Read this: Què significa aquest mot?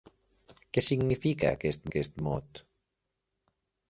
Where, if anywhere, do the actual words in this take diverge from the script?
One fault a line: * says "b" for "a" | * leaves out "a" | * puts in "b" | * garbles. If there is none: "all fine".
* puts in "aquest"